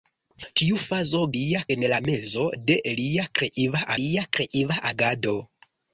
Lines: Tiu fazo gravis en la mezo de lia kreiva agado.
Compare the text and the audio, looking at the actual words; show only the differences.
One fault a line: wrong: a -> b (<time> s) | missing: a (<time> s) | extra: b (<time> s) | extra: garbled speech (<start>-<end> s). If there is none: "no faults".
wrong: gravis -> lia (1.4 s)
extra: lia kreiva (4.0 s)